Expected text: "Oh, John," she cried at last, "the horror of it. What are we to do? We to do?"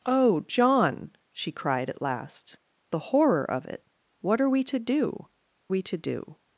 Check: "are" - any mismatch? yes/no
no